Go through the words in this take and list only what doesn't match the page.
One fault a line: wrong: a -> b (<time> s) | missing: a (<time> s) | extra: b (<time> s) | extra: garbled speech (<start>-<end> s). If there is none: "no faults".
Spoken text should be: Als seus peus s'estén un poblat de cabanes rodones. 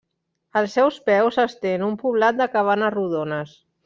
no faults